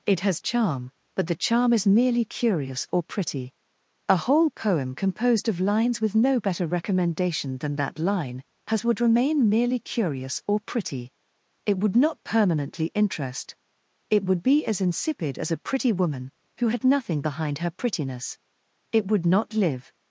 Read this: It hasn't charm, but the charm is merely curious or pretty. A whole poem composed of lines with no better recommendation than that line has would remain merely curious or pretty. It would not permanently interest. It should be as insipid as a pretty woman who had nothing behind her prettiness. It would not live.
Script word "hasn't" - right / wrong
wrong